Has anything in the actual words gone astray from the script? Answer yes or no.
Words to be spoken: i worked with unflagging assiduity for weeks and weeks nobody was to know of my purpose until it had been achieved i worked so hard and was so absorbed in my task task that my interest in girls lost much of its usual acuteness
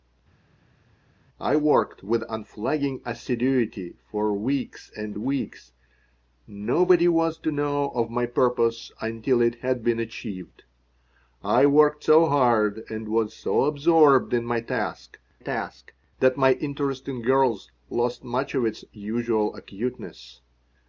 no